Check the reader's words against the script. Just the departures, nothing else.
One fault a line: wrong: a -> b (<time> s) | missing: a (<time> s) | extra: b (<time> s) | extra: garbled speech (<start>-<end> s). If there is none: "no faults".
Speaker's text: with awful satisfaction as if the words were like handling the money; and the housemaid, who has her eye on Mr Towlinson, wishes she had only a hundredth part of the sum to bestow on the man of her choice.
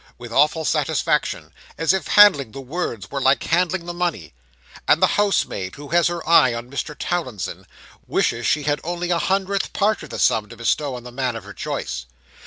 extra: handling (2.1 s)